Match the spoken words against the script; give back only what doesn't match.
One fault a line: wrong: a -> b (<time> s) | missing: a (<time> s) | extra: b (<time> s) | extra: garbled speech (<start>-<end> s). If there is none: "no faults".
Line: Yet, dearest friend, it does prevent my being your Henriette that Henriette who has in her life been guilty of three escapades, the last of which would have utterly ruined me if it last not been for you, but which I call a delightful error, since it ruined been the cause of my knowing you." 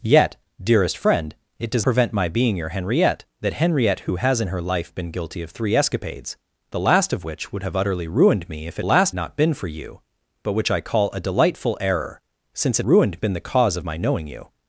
no faults